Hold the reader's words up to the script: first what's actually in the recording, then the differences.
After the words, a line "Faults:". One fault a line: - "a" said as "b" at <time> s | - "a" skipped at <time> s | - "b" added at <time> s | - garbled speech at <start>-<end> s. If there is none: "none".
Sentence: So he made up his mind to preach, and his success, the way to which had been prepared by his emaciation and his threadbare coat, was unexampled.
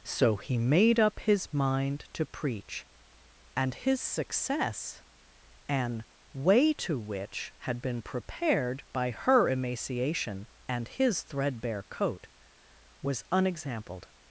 So he made up his mind to preach, and his success, an way to which had been prepared by her emaciation and his threadbare coat, was unexampled.
Faults:
- "the" said as "an" at 5.7 s
- "his" said as "her" at 9.1 s